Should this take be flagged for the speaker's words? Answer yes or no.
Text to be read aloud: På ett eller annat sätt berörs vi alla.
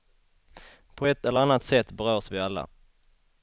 no